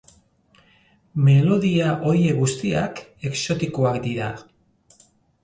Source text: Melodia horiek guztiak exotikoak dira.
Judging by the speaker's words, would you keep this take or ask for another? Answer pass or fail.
pass